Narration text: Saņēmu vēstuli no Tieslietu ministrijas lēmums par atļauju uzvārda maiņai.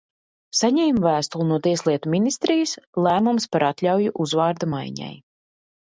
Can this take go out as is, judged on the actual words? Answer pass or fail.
pass